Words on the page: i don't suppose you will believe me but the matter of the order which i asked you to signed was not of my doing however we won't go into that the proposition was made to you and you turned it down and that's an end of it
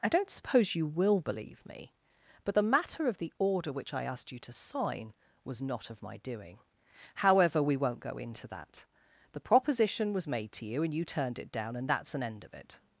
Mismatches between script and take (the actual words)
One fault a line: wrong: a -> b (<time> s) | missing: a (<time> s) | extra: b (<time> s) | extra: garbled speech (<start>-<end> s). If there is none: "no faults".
wrong: signed -> sign (4.5 s)